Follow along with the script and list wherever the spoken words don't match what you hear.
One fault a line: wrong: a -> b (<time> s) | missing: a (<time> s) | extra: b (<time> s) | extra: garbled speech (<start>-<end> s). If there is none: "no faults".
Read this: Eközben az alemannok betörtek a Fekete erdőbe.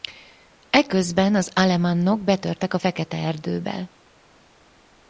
no faults